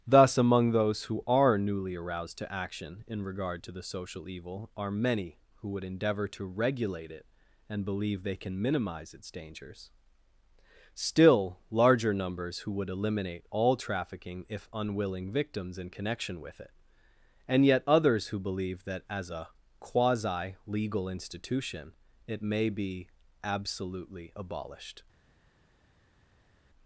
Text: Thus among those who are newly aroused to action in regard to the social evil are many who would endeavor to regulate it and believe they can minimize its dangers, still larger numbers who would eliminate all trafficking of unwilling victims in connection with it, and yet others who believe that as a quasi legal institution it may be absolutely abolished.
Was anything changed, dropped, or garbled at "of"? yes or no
yes